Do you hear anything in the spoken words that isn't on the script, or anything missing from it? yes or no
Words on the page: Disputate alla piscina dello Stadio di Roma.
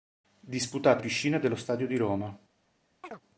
yes